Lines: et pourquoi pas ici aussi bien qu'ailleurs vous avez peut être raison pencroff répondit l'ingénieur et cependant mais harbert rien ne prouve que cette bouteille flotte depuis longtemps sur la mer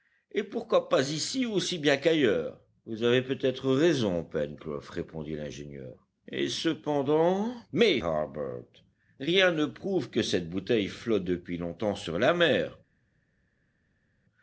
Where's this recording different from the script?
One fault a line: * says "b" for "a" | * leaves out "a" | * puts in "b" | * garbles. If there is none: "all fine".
all fine